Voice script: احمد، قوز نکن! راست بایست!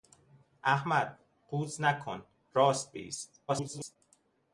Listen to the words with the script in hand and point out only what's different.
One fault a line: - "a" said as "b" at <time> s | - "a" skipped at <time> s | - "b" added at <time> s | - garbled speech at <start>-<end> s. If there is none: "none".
- garbled speech at 3.5-4.0 s